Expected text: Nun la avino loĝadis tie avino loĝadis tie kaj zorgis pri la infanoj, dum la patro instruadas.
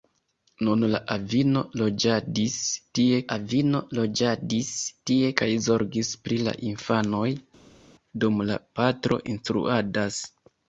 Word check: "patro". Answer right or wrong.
right